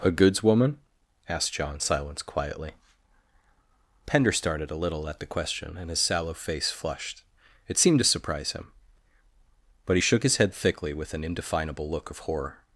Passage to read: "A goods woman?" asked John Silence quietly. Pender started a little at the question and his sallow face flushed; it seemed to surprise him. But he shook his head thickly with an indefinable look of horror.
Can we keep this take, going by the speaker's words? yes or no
yes